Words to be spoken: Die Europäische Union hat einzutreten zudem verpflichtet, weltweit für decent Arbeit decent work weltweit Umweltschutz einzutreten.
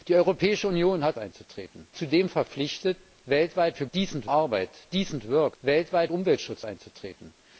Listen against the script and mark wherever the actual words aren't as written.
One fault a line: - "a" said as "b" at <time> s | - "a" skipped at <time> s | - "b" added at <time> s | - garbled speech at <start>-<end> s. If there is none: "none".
none